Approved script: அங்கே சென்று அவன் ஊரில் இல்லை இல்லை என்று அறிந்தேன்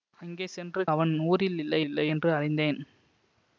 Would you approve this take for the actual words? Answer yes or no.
yes